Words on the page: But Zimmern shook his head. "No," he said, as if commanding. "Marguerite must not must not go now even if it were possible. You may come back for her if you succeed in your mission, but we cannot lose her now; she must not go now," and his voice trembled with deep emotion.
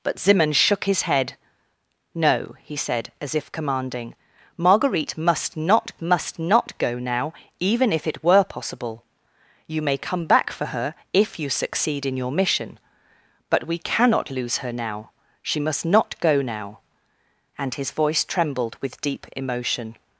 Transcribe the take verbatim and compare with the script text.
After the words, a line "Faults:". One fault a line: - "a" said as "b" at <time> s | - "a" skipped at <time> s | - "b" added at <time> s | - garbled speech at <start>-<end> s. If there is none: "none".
But Zimmern shook his head. "No," he said, as if commanding. "Marguerite must not must not go now even if it were possible. You may come back for her if you succeed in your mission, but we cannot lose her now; she must not go now," and his voice trembled with deep emotion.
Faults:
none